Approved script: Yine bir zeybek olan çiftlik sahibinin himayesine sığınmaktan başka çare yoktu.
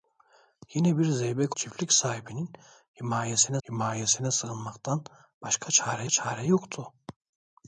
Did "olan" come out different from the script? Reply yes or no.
yes